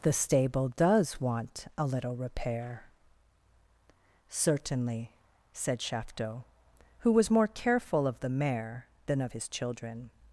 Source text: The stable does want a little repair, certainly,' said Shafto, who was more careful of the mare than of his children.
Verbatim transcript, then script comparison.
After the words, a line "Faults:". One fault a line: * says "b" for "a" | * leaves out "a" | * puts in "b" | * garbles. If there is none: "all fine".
The stable does want a little repair, certainly,' said Shafto, who was more careful of the mare than of his children.
Faults:
all fine